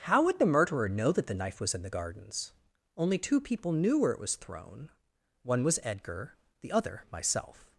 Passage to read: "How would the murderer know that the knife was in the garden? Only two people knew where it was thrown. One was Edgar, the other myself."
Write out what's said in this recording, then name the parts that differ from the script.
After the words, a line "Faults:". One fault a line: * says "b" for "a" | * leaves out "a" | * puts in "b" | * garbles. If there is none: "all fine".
"How would the murderer know that the knife was in the gardens? Only two people knew where it was thrown. One was Edgar, the other myself."
Faults:
* says "gardens" for "garden"